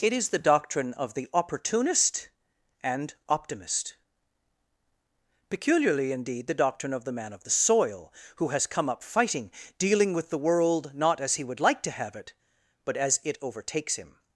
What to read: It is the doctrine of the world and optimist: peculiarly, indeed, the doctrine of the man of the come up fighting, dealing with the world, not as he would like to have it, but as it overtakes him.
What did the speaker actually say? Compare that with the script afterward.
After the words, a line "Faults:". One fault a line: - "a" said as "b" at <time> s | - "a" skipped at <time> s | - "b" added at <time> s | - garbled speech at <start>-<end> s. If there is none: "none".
It is the doctrine of the opportunist and optimist: peculiarly, indeed, the doctrine of the man of the soil, who has come up fighting, dealing with the world, not as he would like to have it, but as it overtakes him.
Faults:
- "world" said as "opportunist" at 1.3 s
- "soil who has" added at 7.5 s